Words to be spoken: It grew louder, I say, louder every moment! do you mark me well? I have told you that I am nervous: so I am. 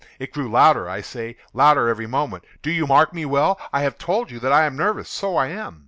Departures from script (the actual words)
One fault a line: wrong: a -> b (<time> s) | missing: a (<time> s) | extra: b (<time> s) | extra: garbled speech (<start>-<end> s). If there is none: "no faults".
no faults